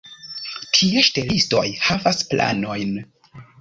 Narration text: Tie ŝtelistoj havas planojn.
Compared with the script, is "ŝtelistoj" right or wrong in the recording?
right